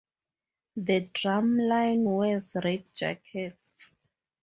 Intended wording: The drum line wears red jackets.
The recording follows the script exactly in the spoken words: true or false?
true